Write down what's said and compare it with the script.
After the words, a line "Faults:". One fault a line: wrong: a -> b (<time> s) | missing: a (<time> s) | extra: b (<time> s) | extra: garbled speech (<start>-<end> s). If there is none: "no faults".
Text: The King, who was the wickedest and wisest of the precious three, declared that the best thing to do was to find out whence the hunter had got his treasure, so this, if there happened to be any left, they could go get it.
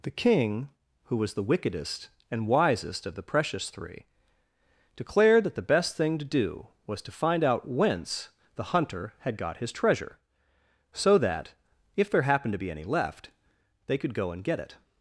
The King, who was the wickedest and wisest of the precious three, declared that the best thing to do was to find out whence the hunter had got his treasure, so that, if there happened to be any left, they could go and get it.
Faults:
wrong: this -> that (11.2 s)
extra: and (14.3 s)